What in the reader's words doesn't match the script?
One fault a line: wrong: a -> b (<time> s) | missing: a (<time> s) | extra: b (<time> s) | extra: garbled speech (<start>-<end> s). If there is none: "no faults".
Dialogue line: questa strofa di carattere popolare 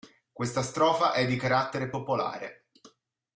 extra: è (1.1 s)